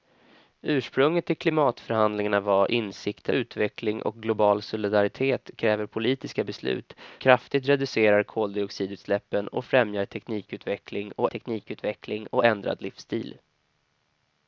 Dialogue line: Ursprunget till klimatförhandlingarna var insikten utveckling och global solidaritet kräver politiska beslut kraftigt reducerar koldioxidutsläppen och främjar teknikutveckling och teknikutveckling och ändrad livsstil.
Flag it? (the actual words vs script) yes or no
no